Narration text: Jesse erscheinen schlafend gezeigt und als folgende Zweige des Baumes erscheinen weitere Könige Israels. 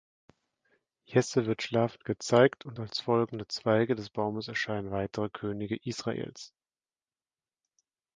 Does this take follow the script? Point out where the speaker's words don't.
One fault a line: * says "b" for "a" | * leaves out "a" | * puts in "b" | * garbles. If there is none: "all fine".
* says "wird" for "erscheinen"